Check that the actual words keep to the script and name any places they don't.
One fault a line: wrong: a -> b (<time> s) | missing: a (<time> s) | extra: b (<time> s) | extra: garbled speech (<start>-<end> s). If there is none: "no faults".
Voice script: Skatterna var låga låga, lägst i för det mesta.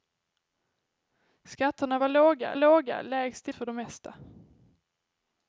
no faults